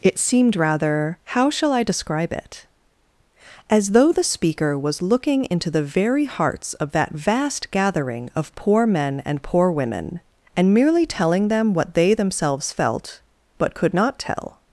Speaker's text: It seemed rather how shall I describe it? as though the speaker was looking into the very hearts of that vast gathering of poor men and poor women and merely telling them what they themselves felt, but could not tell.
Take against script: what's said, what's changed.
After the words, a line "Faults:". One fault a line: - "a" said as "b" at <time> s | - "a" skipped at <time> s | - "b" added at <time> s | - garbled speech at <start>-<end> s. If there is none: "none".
It seemed rather how shall I describe it? as though the speaker was looking into the very hearts of that vast gathering of poor men and poor women and merely telling them what they themselves felt, but could not tell.
Faults:
none